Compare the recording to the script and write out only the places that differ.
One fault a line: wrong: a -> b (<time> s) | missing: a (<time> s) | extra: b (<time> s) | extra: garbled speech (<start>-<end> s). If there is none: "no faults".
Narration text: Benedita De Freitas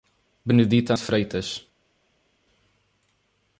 no faults